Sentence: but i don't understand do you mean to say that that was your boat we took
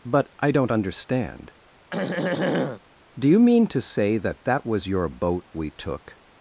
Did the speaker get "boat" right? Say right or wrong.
right